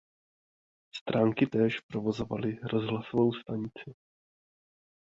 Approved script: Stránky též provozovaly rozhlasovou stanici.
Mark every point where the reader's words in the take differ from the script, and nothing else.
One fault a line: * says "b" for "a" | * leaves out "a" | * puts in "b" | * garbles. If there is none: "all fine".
all fine